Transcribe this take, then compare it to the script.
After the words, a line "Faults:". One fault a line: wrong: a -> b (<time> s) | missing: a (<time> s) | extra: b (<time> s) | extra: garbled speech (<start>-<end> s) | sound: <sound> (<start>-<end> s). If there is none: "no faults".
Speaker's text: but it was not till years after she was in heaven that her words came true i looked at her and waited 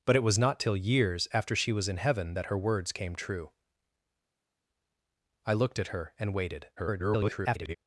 but it was not till years after she was in heaven that her words came true i looked at her and waited [garbled]
Faults:
extra: garbled speech (6.8-7.8 s)